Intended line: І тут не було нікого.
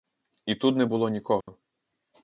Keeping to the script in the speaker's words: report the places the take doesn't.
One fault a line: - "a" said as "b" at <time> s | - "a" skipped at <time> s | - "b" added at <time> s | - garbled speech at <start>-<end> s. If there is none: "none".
none